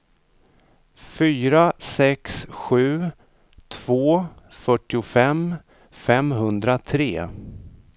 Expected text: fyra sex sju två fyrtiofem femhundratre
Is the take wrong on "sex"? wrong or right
right